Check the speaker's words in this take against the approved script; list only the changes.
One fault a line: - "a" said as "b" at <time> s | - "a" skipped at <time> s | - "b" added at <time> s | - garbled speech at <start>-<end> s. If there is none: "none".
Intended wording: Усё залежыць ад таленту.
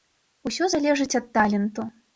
none